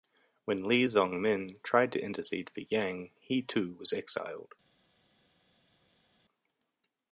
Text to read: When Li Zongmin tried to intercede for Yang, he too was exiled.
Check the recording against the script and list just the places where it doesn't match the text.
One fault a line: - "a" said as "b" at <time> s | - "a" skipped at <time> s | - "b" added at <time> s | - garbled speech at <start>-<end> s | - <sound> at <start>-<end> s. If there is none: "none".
none